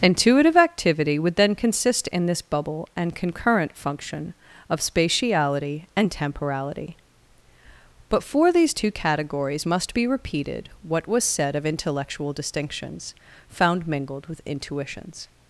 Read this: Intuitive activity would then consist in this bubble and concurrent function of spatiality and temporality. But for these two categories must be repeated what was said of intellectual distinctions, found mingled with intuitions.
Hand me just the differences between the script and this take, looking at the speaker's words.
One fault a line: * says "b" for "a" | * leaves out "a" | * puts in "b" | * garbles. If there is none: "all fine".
all fine